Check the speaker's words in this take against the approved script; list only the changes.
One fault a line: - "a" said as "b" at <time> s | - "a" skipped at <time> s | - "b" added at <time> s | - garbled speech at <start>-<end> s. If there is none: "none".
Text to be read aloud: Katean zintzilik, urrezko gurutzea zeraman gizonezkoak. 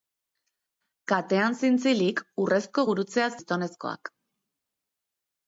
- "zeraman" skipped at 3.3 s